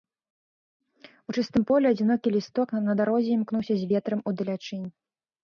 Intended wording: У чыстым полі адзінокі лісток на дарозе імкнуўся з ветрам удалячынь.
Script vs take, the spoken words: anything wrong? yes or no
no